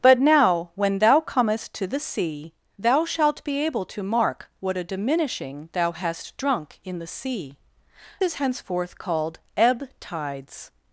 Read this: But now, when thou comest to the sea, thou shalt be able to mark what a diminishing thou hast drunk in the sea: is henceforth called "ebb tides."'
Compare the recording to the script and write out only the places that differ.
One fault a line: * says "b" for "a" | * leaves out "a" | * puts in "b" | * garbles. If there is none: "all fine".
all fine